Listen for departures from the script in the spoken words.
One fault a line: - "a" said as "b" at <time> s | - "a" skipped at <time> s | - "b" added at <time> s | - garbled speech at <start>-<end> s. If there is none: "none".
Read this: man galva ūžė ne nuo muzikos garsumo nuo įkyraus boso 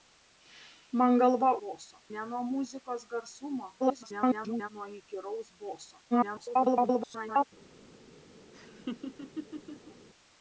- "ūžė" said as "boso" at 1.6 s
- garbled speech at 3.8-4.7 s
- garbled speech at 6.1-7.4 s